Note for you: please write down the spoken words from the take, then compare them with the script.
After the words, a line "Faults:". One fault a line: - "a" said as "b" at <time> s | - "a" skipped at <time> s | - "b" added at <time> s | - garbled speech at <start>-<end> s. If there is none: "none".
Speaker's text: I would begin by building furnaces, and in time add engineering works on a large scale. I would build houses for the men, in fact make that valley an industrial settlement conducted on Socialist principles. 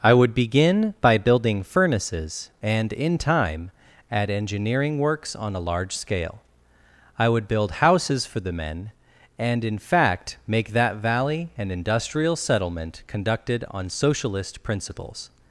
I would begin by building furnaces, and in time add engineering works on a large scale. I would build houses for the men, and in fact make that valley an industrial settlement conducted on Socialist principles.
Faults:
- "and" added at 9.4 s